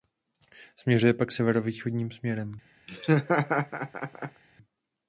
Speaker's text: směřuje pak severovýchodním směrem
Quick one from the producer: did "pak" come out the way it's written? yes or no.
yes